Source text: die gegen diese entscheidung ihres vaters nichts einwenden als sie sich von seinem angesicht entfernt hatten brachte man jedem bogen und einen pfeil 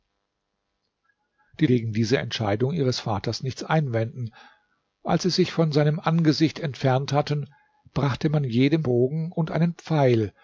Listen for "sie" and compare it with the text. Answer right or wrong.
right